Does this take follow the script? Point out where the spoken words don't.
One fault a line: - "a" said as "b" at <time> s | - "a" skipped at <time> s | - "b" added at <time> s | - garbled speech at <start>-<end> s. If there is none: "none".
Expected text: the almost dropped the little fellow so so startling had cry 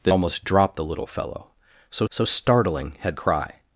none